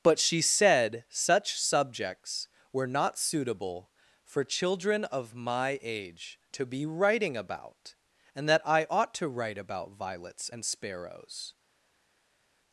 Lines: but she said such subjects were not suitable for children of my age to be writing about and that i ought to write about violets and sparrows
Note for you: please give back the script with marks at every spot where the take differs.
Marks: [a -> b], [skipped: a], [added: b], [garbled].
but she said such subjects were not suitable for children of my age to be writing about and that i ought to write about violets and sparrows